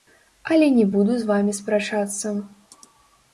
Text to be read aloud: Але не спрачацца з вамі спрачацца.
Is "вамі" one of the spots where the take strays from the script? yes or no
no